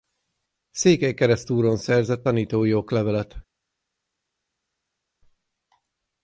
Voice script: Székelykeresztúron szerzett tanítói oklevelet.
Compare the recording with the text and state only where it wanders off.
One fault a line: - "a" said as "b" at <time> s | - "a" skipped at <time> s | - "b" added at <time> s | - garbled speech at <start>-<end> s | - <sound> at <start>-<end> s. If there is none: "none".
none